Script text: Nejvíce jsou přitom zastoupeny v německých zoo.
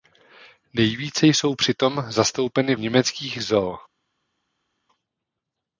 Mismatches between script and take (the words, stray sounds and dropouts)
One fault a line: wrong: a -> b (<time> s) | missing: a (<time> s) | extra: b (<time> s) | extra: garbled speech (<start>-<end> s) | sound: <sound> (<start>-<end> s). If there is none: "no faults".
missing: v (2.8 s)